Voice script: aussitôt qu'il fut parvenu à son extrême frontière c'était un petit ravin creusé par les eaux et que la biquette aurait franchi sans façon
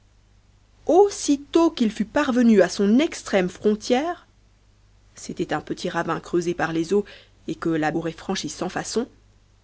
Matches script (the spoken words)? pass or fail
fail